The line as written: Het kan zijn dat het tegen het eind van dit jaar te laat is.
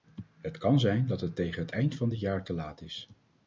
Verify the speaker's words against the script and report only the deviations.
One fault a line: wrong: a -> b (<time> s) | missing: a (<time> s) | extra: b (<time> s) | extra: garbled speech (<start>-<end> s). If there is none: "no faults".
no faults